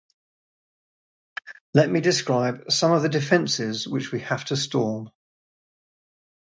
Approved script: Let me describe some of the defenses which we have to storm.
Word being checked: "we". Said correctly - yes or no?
yes